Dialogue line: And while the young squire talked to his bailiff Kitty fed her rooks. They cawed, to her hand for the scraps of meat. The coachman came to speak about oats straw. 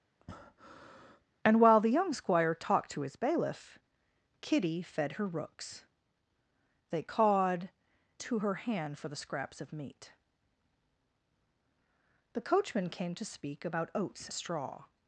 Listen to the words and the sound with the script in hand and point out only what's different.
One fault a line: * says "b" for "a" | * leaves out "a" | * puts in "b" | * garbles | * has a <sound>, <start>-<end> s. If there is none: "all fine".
* has a breath, 0.2-1.2 s